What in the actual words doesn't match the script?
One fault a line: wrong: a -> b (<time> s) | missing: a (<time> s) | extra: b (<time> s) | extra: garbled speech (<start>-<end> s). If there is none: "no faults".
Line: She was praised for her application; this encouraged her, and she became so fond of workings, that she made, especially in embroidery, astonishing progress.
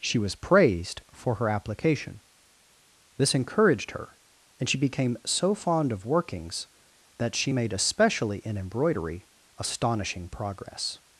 no faults